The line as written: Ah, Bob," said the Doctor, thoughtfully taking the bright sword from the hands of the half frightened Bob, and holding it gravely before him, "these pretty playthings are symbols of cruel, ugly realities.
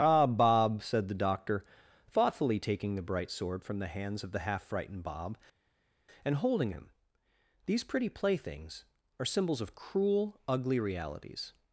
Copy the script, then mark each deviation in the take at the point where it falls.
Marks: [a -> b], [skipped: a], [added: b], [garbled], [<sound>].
Ah, Bob," said the Doctor, thoughtfully taking the bright sword from the hands of the half frightened Bob, and holding [skipped: it gravely before] him, "these pretty playthings are symbols of cruel, ugly realities.